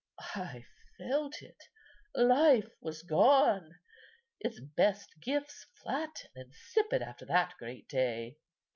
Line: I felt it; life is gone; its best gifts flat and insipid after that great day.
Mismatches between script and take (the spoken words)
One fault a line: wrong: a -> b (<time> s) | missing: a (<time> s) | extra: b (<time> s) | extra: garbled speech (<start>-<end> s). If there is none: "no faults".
wrong: is -> was (2.8 s)